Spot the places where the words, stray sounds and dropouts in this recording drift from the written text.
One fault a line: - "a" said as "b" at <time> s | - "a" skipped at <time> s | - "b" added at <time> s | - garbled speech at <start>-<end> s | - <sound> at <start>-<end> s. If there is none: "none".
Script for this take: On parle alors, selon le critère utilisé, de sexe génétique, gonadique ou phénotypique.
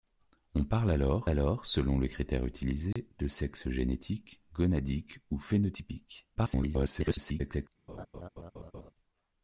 - "alors" added at 1.3 s
- dropout at 2.9-3.0 s
- garbled speech at 6.4-7.7 s
- laugh at 7.9-8.9 s